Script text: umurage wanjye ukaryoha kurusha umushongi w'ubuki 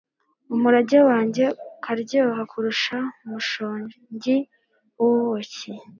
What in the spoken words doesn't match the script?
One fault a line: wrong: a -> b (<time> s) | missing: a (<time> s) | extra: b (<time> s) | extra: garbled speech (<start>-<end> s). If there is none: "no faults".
no faults